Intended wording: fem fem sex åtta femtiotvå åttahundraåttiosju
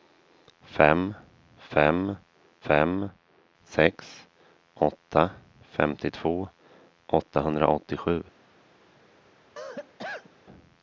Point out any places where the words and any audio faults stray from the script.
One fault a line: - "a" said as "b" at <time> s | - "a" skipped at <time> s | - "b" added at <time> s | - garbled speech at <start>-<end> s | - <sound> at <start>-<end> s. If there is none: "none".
- "fem" added at 2.6 s
- cough at 9.6-10.3 s